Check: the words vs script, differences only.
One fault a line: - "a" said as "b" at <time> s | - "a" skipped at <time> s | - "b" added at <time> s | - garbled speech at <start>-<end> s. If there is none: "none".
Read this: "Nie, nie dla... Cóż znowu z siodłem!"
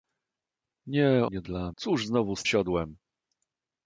none